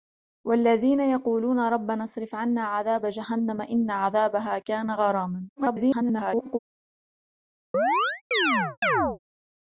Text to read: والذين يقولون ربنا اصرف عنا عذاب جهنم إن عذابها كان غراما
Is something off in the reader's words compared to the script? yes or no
yes